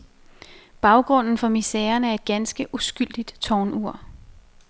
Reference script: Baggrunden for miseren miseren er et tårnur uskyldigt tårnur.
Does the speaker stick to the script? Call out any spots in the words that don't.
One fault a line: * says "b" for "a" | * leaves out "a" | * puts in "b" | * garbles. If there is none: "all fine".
* leaves out "miseren"
* says "ganske" for "tårnur"